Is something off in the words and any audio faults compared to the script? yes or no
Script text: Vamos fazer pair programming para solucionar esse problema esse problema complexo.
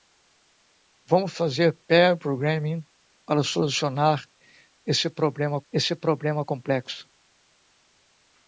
no